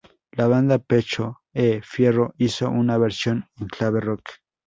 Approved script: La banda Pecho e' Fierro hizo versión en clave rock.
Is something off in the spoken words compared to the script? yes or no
yes